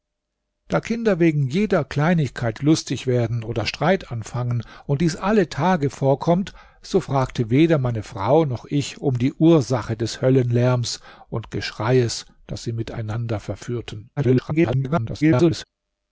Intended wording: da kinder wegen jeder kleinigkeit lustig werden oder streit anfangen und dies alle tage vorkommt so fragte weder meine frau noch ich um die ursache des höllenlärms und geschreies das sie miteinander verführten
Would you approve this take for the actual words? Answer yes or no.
no